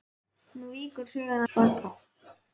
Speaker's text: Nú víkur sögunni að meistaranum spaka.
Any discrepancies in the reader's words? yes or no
yes